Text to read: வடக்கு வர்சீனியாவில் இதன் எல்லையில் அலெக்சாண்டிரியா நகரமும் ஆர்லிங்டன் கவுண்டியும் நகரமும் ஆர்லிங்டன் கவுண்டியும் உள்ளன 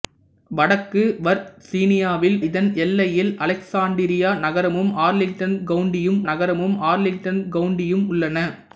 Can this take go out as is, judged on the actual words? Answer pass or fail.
pass